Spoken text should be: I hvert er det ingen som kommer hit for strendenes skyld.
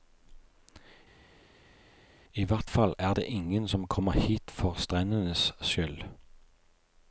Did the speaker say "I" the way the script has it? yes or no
yes